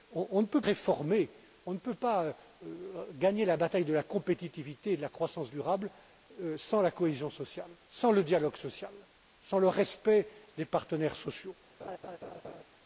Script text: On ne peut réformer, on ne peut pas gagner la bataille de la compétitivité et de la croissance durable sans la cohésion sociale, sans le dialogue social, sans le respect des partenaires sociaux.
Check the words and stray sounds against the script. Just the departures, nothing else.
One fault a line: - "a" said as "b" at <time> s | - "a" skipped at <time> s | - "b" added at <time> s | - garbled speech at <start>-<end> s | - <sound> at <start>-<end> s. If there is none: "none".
- laugh at 11.8-12.6 s